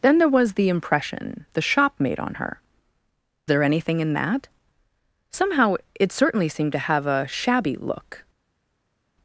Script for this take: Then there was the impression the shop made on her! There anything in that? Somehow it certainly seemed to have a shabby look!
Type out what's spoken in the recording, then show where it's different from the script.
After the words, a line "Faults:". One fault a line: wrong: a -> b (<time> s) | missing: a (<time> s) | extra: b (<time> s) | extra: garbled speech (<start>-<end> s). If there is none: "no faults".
Then there was the impression the shop made on her! There anything in that? Somehow it certainly seemed to have a shabby look!
Faults:
no faults